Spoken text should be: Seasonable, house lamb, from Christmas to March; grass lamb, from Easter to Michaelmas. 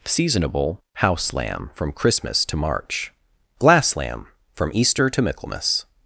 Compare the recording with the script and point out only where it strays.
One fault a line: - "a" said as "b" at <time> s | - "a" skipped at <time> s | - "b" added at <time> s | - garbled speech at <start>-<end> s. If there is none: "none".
- "grass" said as "glass" at 3.6 s